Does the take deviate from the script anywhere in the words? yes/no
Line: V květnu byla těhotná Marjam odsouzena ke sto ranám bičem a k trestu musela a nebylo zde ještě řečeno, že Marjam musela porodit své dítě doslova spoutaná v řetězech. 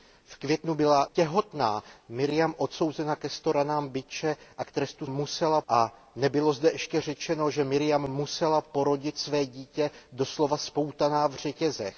no